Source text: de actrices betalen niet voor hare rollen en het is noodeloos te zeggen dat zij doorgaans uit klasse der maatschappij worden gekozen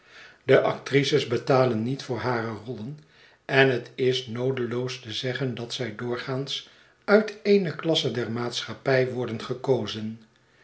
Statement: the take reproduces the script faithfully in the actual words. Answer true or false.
false